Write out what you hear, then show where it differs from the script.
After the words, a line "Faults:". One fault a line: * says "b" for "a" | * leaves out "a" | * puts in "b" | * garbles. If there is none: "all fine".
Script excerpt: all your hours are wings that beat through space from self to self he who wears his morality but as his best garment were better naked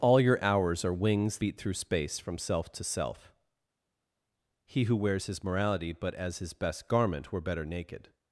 all your hours are wings beat through space from self to self he who wears his morality but as his best garment were better naked
Faults:
* leaves out "that"